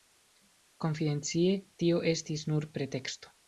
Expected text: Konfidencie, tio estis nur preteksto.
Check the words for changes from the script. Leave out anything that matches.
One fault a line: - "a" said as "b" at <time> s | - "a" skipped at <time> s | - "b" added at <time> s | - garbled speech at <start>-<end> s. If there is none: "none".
none